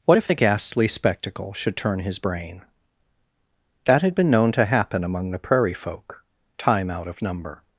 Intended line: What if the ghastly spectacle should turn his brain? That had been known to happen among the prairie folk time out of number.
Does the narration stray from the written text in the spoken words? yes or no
no